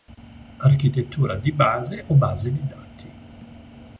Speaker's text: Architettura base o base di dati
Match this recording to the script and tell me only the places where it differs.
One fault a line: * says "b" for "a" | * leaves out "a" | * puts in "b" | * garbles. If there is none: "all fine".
* puts in "di"